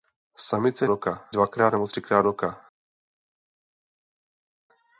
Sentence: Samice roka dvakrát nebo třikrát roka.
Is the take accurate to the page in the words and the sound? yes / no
yes